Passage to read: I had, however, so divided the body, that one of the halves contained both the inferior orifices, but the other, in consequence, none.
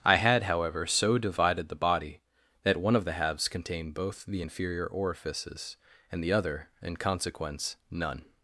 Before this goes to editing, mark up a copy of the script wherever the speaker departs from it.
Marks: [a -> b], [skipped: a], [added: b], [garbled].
I had, however, so divided the body, that one of the halves contained both the inferior orifices, [but -> and] the other, in consequence, none.